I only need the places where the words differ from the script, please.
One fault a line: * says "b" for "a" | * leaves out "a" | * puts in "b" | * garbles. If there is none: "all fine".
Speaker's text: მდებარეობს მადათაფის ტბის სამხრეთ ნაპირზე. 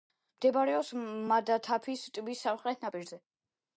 all fine